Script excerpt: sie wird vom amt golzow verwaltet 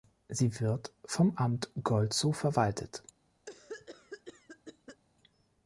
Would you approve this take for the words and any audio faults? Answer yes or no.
no